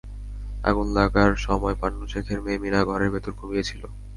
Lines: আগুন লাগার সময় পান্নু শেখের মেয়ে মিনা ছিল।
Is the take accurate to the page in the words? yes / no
no